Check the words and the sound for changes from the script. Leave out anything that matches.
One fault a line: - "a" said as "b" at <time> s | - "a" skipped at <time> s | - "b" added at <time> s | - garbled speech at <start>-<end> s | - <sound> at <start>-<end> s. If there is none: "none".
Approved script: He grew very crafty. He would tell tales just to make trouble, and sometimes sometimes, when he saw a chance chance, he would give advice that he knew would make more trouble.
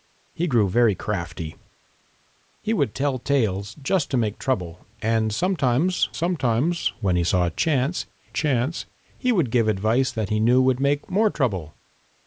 none